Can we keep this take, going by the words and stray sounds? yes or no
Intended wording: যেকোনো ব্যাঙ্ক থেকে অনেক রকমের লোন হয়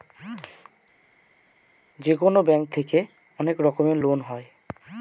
yes